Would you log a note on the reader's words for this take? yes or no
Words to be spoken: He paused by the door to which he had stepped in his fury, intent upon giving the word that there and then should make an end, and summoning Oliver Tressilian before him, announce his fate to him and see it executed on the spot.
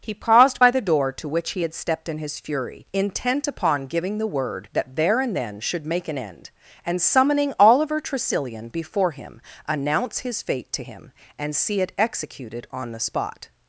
no